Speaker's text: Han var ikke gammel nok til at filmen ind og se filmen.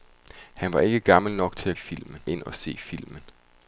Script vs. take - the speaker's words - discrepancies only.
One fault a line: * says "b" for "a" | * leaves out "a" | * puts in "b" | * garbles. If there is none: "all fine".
all fine